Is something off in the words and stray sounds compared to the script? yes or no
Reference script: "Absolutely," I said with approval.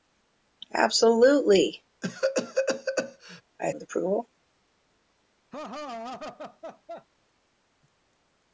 yes